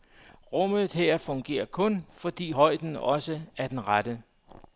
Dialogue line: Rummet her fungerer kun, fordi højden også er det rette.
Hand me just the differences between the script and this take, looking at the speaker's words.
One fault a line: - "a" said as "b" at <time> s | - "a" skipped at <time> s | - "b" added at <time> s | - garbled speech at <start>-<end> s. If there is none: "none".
- "det" said as "den" at 3.7 s